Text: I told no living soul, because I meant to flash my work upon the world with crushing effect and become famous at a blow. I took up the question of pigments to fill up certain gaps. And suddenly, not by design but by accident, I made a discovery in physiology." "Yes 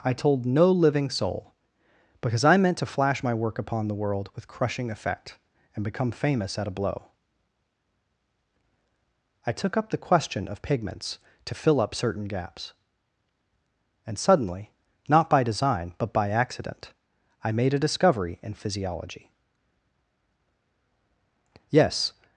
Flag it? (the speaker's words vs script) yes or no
no